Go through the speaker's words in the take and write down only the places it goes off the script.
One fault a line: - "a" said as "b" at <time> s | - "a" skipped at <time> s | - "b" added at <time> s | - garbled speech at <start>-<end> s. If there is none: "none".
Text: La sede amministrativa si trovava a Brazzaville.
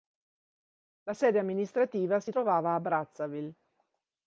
none